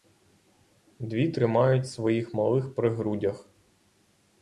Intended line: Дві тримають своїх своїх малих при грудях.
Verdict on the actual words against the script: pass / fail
fail